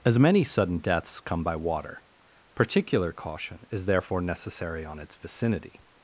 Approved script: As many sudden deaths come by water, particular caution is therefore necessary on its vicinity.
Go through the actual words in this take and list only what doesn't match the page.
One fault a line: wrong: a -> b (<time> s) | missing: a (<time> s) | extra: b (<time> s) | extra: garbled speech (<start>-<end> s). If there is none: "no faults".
no faults